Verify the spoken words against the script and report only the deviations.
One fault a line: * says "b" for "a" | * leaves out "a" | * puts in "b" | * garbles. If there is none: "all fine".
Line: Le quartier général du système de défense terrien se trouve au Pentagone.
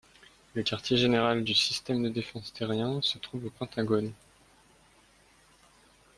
all fine